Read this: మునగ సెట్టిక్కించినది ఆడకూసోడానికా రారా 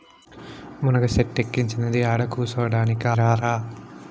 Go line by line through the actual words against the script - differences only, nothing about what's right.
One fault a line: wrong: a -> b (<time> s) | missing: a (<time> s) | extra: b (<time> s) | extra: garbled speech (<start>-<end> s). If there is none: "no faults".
no faults